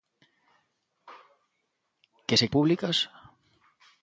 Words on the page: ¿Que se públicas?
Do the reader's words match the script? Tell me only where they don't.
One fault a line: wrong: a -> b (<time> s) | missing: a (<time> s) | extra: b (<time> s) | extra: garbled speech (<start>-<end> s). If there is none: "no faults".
no faults